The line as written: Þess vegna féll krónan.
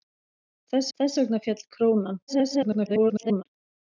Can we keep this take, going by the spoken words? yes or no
no